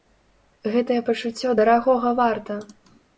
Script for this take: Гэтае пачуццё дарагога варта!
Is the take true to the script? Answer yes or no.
yes